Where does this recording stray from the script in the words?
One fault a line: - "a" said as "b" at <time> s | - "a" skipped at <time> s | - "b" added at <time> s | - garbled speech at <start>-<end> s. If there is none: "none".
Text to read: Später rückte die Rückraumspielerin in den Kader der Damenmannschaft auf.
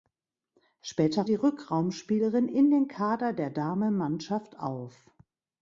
- "rückte" skipped at 1.3 s